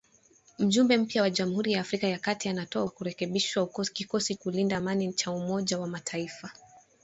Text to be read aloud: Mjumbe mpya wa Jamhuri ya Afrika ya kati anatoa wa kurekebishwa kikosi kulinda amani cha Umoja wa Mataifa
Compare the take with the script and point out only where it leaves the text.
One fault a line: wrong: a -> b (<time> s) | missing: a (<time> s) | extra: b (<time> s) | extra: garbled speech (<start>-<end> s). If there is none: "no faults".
no faults